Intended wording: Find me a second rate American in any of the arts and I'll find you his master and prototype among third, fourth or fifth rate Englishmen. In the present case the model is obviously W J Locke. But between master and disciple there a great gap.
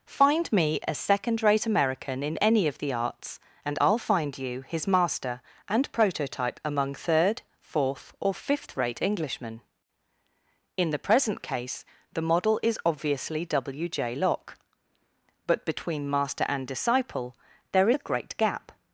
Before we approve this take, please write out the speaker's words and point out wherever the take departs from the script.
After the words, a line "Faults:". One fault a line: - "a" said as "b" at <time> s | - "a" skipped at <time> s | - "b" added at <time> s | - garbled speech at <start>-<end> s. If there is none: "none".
Find me a second rate American in any of the arts and I'll find you his master and prototype among third, fourth or fifth rate Englishmen. In the present case the model is obviously W J Locke. But between master and disciple there a great gap.
Faults:
none